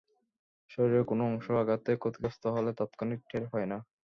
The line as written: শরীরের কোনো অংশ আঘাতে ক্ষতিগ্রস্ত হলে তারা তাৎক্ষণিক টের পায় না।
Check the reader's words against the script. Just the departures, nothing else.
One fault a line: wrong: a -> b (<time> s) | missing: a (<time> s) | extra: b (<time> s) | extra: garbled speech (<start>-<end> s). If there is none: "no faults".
missing: তারা (2.7 s)